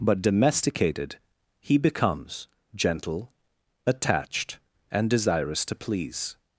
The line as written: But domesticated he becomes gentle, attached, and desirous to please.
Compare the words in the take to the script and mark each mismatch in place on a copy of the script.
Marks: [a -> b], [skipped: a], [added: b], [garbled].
But domesticated he becomes gentle, attached, and desirous to please.